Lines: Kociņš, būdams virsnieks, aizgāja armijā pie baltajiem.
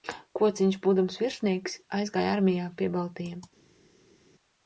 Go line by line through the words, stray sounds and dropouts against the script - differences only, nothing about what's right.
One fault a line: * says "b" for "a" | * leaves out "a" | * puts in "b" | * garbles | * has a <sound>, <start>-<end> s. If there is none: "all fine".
all fine